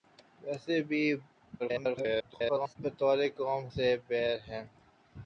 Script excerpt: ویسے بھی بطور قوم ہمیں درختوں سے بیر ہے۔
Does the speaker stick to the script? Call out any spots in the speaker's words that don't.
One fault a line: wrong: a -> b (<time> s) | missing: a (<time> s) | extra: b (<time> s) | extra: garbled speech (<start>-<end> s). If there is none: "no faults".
extra: garbled speech (1.6-2.8 s)
missing: ہمیں درختوں (3.6 s)